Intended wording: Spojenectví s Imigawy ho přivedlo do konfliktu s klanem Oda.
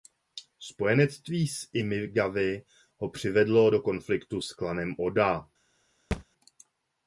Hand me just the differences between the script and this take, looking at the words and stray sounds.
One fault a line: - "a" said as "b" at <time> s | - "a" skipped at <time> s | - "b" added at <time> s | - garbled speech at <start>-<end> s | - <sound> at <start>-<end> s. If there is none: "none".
- thud at 6.1-6.2 s